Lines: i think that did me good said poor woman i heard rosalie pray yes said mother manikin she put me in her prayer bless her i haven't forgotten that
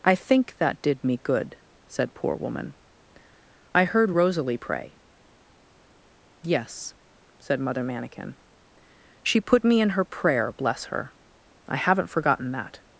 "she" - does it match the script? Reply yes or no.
yes